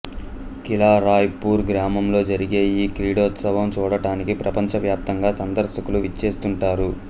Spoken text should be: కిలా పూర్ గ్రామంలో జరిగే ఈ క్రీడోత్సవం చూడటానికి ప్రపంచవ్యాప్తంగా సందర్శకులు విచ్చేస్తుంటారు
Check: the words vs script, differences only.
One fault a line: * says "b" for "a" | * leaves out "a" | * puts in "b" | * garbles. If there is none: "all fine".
* puts in "రాయ్"